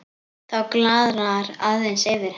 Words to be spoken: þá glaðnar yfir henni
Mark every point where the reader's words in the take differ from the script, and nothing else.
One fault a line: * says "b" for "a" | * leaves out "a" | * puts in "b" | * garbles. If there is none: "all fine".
* puts in "aðeins"